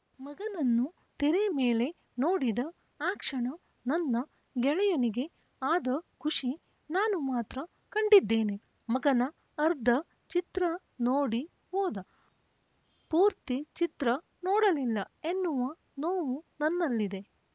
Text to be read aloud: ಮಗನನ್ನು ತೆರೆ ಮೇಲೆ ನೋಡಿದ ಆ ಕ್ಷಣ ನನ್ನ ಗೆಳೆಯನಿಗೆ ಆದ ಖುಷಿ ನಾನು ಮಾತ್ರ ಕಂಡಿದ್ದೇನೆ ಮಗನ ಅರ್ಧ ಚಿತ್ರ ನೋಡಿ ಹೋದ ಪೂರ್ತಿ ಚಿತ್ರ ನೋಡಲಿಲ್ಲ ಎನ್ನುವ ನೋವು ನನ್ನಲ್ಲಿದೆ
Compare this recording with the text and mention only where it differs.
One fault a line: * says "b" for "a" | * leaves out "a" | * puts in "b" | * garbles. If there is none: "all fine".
all fine